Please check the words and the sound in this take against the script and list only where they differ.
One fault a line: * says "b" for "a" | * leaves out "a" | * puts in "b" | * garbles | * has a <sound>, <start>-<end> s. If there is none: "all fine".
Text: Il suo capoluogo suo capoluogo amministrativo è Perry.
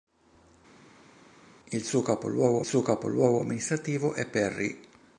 all fine